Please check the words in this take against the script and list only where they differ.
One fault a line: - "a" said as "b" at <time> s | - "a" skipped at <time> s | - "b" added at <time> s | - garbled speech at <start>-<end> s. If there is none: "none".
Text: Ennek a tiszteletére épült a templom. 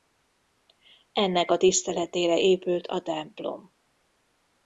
none